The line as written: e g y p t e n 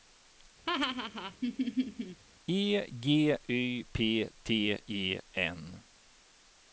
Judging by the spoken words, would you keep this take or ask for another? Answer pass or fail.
pass